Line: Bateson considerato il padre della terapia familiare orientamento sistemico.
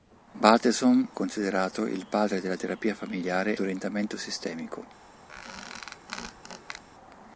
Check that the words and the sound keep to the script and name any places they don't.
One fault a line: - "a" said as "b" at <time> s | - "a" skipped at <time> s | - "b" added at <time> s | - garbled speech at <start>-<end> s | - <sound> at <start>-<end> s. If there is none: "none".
- squeak at 5.3-6.8 s